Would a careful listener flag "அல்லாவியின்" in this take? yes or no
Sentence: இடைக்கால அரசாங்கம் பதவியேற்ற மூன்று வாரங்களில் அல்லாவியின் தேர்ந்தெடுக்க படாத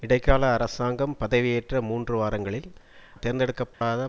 yes